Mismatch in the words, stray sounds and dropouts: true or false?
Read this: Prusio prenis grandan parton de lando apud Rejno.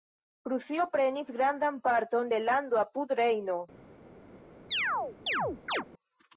true